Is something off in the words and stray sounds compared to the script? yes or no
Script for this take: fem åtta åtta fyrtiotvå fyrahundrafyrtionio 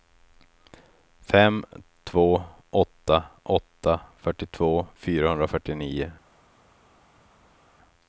yes